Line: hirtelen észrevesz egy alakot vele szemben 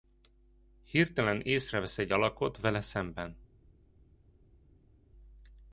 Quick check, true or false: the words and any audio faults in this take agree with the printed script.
true